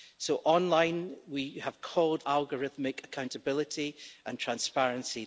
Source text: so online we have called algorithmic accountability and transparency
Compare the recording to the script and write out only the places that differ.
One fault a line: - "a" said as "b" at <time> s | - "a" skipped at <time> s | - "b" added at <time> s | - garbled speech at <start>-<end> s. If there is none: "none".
none